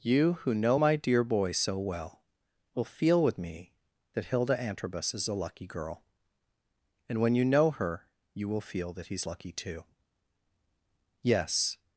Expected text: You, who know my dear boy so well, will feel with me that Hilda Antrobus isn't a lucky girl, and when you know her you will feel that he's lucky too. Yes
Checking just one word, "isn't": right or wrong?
wrong